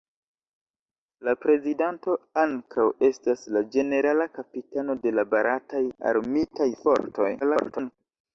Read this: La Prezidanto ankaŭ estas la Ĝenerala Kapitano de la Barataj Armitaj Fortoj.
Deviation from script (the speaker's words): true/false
true